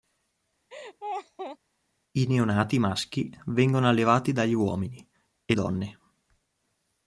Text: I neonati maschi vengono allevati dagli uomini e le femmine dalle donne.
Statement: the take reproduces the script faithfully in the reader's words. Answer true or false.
false